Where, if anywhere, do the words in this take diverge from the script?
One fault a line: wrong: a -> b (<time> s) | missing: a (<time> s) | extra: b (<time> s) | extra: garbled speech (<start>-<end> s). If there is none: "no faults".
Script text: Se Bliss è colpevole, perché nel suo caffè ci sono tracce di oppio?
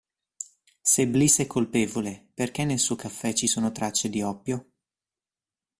no faults